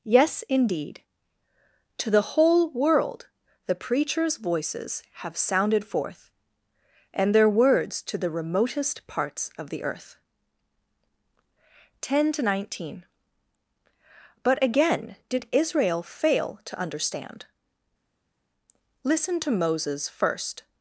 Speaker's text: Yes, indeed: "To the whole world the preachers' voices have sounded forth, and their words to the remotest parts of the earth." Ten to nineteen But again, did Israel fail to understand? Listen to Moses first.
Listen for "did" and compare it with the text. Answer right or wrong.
right